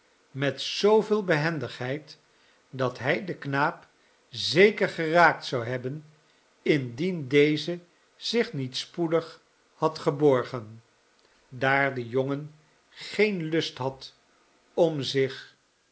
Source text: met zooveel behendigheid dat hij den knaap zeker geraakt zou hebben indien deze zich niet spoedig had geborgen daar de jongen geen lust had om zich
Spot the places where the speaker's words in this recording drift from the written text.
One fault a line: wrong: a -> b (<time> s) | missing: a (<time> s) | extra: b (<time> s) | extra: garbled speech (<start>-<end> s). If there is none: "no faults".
no faults